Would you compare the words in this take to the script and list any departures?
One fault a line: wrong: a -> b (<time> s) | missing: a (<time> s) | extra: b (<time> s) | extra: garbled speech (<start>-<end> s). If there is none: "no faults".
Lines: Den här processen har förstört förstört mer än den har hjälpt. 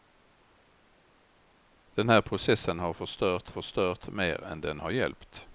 no faults